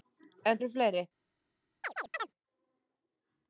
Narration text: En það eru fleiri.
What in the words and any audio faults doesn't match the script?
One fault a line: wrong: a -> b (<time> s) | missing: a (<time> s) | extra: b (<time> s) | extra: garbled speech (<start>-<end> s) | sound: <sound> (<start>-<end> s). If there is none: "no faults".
missing: það (0.6 s)
sound: chirp (1.8-2.3 s)